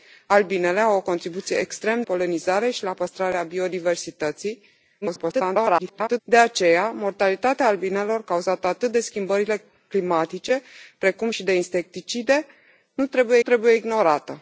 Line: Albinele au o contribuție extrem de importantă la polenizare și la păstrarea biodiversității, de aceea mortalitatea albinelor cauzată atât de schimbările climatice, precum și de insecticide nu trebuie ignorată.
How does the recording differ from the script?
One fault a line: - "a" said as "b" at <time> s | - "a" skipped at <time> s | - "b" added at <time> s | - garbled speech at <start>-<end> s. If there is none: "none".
- "de importantă la" skipped at 2.0 s
- garbled speech at 5.0-6.2 s
- "trebuie" added at 13.4 s